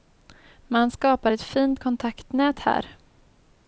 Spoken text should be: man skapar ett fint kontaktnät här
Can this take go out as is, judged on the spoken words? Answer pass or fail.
pass